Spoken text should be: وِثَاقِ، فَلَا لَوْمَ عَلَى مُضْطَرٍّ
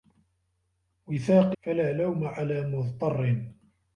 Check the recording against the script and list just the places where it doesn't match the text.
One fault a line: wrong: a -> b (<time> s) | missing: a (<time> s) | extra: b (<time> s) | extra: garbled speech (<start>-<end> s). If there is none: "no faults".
no faults